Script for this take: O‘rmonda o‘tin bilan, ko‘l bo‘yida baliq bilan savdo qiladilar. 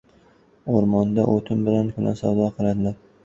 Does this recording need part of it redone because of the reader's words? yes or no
yes